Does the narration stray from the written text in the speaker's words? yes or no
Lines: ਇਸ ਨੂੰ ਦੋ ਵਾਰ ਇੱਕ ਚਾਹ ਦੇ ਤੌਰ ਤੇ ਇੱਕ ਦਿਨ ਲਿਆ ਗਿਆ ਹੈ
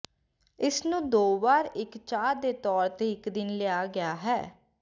no